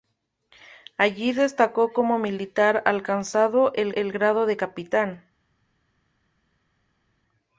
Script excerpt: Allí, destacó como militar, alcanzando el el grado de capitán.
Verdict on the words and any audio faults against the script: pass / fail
pass